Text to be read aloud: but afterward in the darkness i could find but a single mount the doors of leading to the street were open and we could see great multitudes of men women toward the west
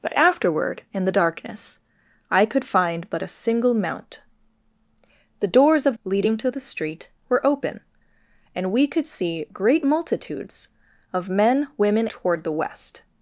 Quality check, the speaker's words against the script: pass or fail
pass